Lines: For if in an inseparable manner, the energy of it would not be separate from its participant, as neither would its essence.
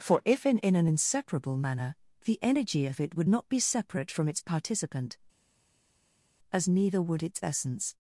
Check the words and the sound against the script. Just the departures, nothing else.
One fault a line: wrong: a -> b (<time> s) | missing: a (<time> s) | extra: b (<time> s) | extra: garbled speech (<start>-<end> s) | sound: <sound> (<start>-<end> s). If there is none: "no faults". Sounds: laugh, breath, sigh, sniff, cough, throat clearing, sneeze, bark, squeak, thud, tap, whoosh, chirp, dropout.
extra: in (0.6 s)